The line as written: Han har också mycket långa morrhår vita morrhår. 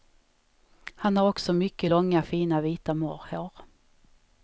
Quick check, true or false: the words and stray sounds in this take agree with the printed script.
false